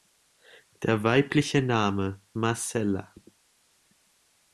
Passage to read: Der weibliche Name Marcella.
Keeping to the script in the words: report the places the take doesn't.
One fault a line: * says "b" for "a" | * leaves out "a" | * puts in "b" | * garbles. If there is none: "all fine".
all fine